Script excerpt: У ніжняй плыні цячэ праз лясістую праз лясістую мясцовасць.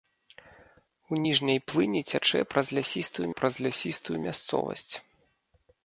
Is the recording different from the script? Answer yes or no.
no